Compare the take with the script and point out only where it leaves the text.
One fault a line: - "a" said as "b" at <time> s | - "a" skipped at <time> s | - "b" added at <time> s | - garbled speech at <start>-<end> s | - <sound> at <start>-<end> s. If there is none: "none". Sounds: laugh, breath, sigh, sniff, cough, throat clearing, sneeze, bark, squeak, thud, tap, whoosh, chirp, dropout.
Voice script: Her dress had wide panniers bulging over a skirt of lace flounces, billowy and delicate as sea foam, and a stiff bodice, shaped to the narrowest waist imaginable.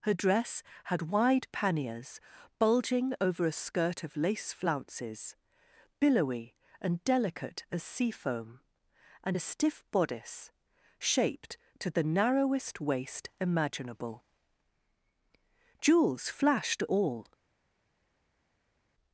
- "Jewels flashed all" added at 15.8 s